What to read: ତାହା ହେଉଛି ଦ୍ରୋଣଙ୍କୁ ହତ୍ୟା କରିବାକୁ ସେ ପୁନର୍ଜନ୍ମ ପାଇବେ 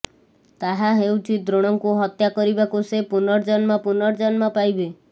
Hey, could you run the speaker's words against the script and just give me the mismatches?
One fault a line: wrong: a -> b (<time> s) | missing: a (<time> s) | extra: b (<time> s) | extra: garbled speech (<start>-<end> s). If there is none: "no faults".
extra: ପୁନର୍ଜନ୍ମ (3.9 s)